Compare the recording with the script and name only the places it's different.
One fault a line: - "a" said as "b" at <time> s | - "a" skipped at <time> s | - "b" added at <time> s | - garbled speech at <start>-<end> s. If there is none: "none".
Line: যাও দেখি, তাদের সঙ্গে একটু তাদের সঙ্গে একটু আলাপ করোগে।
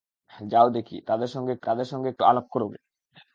none